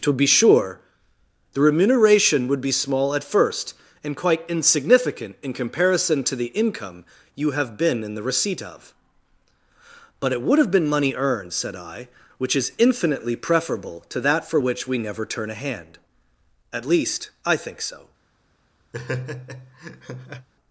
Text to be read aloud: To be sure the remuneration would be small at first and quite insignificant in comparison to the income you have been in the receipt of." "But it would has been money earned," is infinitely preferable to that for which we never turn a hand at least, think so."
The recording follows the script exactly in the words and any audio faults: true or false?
false